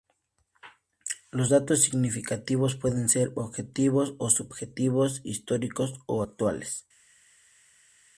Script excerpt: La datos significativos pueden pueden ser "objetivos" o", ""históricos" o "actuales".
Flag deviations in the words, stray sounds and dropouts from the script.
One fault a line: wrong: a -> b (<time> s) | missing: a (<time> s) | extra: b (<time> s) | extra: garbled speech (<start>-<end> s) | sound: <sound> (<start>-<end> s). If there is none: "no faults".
wrong: La -> Los (1.3 s)
missing: pueden (3.1 s)
extra: subjetivos (4.3 s)